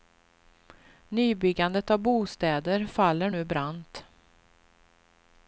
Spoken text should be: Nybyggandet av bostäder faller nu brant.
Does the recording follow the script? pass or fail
pass